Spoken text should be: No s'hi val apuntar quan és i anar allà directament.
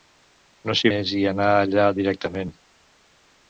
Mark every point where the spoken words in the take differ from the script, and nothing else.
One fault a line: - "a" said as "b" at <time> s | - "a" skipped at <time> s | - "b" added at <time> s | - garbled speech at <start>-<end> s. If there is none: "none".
- "val apuntar quan" skipped at 0.9 s